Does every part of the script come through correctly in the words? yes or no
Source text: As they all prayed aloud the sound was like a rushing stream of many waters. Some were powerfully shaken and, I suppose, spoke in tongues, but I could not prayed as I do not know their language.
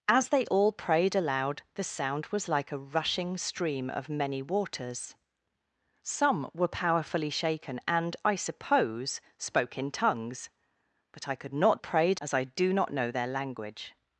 yes